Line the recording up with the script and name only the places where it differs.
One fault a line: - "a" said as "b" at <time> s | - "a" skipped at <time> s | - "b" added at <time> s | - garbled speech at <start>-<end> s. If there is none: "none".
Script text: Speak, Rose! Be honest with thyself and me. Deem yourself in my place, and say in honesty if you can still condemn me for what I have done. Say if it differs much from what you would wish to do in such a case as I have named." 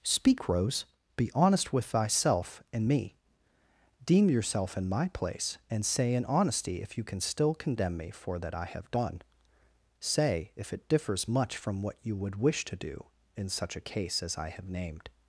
- "what" said as "that" at 8.4 s